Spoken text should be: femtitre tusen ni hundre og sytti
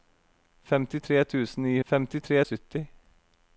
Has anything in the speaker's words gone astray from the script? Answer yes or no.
yes